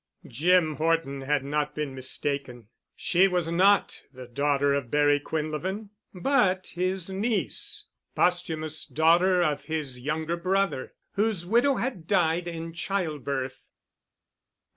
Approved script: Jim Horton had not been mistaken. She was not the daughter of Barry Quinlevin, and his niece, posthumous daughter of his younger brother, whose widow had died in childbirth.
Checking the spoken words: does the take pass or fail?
fail